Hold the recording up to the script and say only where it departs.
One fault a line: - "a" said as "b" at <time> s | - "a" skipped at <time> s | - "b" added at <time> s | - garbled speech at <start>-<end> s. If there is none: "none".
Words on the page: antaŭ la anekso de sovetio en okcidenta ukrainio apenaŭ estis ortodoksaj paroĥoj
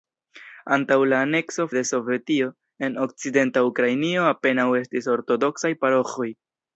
none